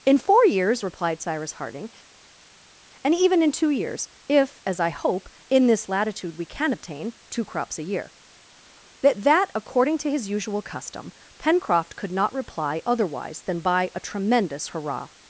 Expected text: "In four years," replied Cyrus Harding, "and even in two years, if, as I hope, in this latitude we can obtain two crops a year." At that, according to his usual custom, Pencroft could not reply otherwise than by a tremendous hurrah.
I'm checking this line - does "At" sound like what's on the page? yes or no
no